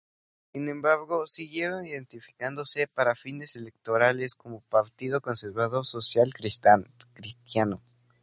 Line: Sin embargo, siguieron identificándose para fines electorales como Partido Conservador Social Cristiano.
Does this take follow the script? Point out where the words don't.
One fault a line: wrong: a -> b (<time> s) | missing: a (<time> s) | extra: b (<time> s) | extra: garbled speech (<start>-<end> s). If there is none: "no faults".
no faults